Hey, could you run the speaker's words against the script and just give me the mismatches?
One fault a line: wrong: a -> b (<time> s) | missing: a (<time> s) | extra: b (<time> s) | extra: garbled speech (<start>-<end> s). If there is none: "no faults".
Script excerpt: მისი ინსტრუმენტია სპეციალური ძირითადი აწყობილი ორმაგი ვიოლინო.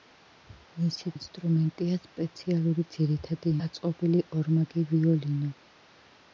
no faults